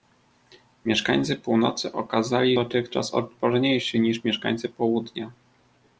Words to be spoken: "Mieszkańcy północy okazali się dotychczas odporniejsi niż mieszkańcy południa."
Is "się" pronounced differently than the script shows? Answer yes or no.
yes